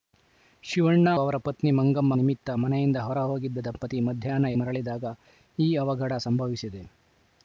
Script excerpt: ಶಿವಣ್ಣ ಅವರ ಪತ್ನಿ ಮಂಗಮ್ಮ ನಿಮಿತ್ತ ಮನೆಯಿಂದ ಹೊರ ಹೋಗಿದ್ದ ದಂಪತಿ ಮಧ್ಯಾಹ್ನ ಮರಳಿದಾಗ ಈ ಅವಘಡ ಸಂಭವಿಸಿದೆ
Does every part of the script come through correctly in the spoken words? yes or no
yes